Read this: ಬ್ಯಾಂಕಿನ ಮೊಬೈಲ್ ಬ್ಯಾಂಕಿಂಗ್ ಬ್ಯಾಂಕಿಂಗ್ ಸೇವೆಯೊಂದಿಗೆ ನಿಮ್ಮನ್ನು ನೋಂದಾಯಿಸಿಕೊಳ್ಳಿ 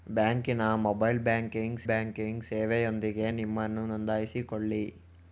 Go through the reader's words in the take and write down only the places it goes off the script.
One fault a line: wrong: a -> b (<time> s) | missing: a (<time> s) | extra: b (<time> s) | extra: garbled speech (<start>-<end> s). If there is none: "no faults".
no faults